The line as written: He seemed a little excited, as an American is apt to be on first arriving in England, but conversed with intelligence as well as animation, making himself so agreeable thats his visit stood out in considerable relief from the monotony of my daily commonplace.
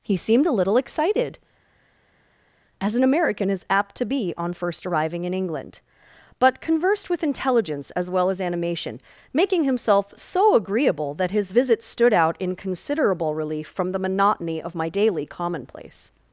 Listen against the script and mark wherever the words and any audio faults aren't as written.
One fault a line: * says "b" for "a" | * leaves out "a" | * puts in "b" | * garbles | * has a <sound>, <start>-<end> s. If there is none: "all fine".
* says "that" for "thats"